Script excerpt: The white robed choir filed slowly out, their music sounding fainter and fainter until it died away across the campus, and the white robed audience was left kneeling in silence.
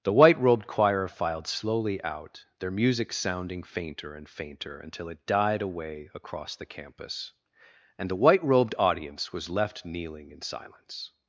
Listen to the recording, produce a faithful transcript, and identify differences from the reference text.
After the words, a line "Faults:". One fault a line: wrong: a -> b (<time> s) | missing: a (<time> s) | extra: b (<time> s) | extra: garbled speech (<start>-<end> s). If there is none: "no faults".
The white robed choir filed slowly out, their music sounding fainter and fainter until it died away across the campus, and the white robed audience was left kneeling in silence.
Faults:
no faults